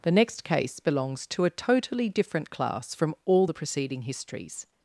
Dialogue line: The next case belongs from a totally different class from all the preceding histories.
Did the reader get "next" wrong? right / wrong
right